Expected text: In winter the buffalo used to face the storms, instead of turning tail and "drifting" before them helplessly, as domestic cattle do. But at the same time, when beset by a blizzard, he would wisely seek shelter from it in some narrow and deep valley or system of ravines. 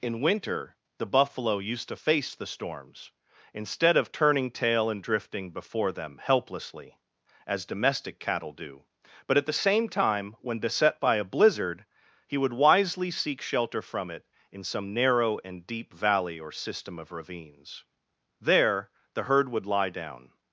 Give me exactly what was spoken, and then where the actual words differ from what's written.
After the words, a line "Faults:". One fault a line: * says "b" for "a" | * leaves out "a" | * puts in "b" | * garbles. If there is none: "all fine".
In winter the buffalo used to face the storms, instead of turning tail and "drifting" before them helplessly, as domestic cattle do. But at the same time, when beset by a blizzard, he would wisely seek shelter from it in some narrow and deep valley or system of ravines. There the herd would lie down
Faults:
* puts in "There the herd would lie down"